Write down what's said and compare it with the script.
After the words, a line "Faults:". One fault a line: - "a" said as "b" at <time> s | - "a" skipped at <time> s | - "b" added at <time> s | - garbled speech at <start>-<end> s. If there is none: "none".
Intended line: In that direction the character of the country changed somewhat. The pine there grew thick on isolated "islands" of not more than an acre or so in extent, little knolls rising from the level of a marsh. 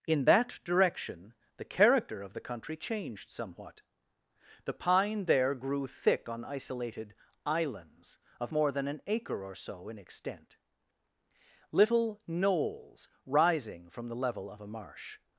In that direction the character of the country changed somewhat. The pine there grew thick on isolated "islands" of more than an acre or so in extent, little knolls rising from the level of a marsh.
Faults:
- "not" skipped at 8.5 s